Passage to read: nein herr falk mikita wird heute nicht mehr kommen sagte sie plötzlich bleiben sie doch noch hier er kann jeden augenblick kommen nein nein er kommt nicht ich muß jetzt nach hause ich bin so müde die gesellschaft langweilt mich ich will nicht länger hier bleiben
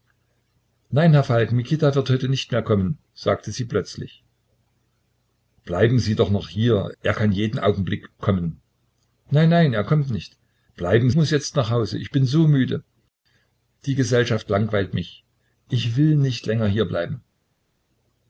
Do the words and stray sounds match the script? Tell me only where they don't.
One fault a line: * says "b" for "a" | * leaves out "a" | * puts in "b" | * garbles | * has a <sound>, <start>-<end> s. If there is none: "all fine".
* says "bleiben" for "ich"